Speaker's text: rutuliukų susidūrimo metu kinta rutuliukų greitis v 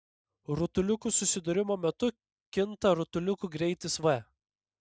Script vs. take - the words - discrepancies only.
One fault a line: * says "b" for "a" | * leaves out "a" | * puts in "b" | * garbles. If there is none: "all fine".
all fine